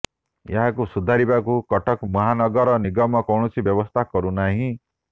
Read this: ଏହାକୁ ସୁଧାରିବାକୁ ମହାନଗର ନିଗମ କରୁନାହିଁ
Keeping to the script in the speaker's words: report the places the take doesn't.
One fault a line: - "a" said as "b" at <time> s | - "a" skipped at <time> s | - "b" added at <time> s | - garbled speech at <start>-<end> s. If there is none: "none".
- "କଟକ" added at 1.7 s
- "କୌଣସି ବ୍ୟବସ୍ଥା" added at 3.3 s